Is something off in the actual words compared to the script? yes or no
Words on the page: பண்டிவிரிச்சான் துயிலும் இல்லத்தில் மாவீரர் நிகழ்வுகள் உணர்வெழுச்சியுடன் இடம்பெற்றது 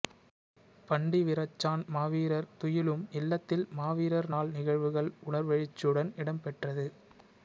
yes